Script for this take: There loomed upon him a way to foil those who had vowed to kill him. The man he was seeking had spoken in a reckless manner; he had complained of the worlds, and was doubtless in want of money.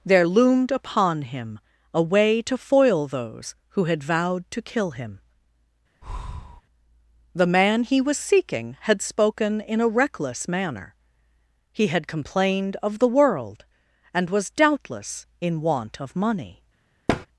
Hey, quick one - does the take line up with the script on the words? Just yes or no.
no